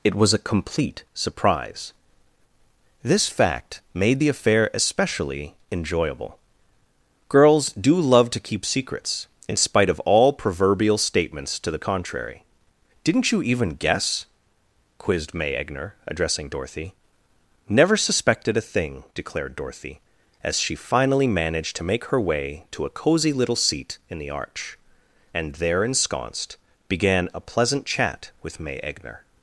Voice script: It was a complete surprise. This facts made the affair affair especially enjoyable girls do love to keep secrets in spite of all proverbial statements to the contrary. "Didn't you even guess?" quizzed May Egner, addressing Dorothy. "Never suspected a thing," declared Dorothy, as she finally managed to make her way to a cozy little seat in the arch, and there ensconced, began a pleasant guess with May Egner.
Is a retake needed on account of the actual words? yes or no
yes